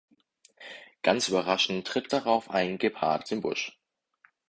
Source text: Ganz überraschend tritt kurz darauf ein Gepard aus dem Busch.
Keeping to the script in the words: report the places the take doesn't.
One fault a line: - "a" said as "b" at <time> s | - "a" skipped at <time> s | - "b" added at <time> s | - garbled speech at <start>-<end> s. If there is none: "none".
- "kurz" skipped at 2.1 s
- "aus" skipped at 3.3 s